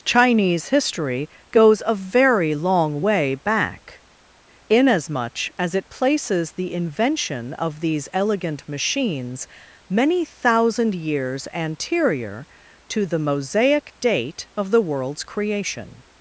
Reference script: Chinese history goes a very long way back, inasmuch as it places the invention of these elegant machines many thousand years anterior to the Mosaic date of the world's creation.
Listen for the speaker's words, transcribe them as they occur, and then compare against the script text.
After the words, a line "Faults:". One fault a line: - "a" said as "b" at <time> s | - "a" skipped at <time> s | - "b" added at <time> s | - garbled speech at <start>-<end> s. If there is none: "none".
Chinese history goes a very long way back, inasmuch as it places the invention of these elegant machines many thousand years anterior to the Mosaic date of the world's creation.
Faults:
none